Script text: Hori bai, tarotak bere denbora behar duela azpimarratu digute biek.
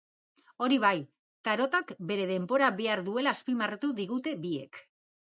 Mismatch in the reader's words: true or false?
false